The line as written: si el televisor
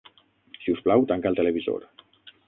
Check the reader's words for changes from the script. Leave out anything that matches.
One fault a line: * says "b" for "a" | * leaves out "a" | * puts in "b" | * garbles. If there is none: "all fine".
* puts in "us plau tanca"